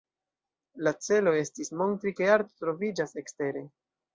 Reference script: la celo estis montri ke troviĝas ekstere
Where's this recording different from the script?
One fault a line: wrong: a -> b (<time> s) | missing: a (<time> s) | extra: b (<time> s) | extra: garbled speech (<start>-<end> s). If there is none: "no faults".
extra: arto (2.4 s)